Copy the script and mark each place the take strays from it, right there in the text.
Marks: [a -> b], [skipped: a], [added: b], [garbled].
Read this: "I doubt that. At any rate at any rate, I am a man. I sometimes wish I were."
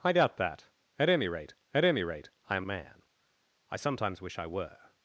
"I doubt that. At any rate at any rate, I am a man. I sometimes wish I were."